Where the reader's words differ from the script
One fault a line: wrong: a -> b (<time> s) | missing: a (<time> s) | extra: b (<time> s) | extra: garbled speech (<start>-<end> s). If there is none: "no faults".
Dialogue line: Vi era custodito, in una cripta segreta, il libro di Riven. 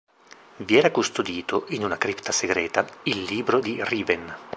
no faults